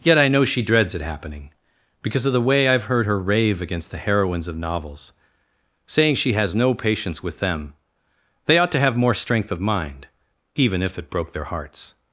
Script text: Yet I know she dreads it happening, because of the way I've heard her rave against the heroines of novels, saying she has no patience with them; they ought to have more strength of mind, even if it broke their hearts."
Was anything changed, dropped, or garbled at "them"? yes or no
no